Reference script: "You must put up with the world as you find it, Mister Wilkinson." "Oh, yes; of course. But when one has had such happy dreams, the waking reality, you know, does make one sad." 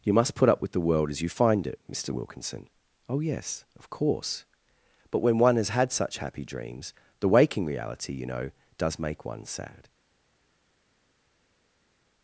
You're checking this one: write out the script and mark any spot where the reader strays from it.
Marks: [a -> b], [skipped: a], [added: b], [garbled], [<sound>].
"You must put up with the world as you find it, Mister Wilkinson." "Oh, yes; of course. But when one has had such happy dreams, the waking reality, you know, does make one sad."